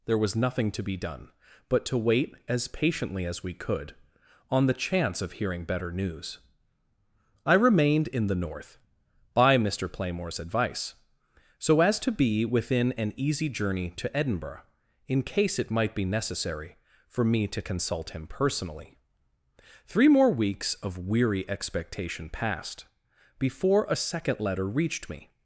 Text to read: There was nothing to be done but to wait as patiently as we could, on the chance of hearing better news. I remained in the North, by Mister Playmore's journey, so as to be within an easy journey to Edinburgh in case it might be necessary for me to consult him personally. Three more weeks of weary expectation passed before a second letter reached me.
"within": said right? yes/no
yes